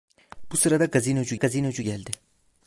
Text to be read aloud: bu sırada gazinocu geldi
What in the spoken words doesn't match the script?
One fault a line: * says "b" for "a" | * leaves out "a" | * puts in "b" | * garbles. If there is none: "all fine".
* puts in "gazinocu"